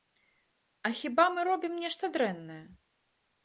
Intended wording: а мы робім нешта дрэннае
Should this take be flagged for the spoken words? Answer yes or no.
yes